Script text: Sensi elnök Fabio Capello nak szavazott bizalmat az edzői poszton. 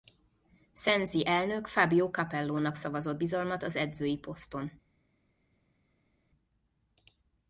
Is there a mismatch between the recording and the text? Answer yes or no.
no